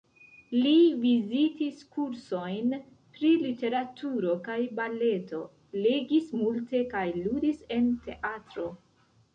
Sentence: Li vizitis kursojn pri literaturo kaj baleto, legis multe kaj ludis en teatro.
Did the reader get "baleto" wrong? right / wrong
right